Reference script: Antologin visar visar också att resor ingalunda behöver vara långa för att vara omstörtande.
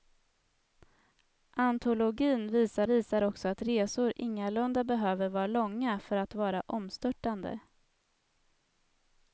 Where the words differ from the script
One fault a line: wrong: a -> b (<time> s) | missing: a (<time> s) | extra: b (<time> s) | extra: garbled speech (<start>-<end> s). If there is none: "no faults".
no faults